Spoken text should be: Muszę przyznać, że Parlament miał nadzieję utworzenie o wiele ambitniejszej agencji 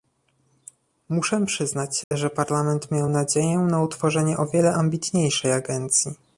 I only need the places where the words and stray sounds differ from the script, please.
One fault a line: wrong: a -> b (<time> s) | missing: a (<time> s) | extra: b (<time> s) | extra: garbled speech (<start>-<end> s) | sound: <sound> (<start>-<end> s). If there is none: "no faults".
sound: dropout (2.0-2.1 s)
extra: na (3.6 s)